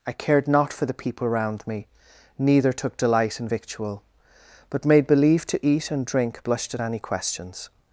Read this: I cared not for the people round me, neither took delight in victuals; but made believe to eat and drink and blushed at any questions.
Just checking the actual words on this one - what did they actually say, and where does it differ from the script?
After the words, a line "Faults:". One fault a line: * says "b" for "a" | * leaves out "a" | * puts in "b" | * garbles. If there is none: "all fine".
I cared not for the people round me, neither took delight in victual; but made believe to eat and drink blushed at any questions.
Faults:
* says "victual" for "victuals"
* leaves out "and"